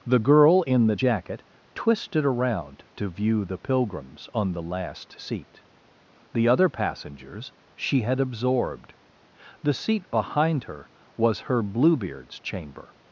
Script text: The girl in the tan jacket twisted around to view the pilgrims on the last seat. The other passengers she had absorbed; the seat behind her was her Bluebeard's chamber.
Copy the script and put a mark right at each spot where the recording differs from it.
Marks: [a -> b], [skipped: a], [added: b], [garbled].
The girl in the [skipped: tan] jacket twisted around to view the pilgrims on the last seat. The other passengers she had absorbed; the seat behind her was her Bluebeard's chamber.